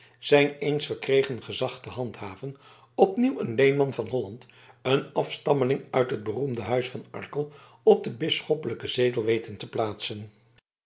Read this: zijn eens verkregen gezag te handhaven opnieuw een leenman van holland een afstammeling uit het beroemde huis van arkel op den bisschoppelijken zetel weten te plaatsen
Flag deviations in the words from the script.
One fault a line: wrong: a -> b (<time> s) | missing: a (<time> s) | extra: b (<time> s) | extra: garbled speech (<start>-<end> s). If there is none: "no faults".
no faults